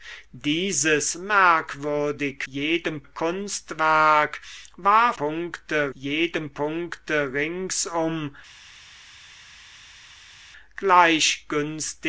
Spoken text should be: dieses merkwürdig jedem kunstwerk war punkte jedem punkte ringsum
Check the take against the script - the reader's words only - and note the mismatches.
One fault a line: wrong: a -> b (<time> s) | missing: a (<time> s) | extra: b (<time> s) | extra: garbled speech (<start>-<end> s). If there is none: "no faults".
no faults